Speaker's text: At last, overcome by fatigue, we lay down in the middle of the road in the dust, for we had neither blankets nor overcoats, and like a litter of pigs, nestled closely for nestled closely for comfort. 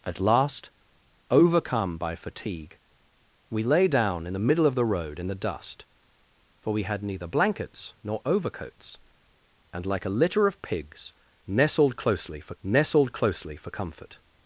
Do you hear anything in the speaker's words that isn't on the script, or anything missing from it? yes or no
no